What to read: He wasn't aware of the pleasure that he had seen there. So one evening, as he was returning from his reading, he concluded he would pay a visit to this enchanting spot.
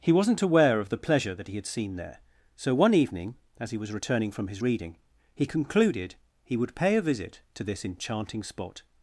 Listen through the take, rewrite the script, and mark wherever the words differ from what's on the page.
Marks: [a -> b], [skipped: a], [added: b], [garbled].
He wasn't aware of the pleasure that he had seen there. So one evening, as he was returning from his reading, he concluded he would pay a visit to this enchanting spot.